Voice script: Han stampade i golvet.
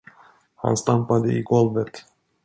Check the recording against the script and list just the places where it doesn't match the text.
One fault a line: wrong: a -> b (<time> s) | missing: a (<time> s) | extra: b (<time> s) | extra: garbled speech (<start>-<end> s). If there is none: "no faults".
no faults